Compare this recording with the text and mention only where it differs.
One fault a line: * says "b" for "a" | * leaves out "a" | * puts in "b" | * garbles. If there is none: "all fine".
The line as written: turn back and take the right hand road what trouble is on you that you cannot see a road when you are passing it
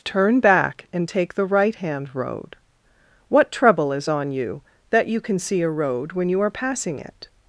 * says "can" for "cannot"